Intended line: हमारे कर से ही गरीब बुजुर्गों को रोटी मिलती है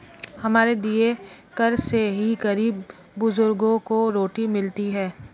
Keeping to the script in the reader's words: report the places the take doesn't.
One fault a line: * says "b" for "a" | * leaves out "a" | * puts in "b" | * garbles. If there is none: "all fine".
* puts in "दिए"